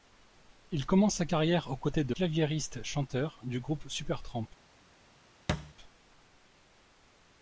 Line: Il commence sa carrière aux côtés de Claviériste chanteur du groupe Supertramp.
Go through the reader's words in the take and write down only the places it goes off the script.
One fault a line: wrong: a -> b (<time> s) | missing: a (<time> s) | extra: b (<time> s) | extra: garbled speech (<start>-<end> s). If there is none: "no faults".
no faults